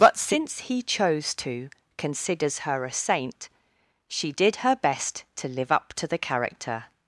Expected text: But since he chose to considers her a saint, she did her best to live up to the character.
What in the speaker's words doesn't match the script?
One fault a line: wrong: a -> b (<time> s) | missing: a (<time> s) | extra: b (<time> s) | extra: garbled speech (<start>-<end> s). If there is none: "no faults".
no faults